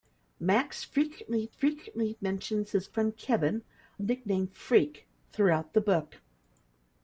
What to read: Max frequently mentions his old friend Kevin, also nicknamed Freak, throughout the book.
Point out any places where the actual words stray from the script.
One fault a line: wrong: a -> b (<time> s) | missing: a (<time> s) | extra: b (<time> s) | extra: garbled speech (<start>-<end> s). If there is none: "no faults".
extra: frequently (1.5 s)
missing: old (2.9 s)
missing: also (3.6 s)